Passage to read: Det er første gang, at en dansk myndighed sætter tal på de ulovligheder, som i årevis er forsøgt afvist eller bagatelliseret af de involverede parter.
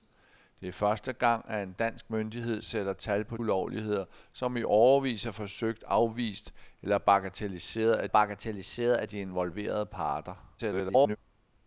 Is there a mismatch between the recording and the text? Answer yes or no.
yes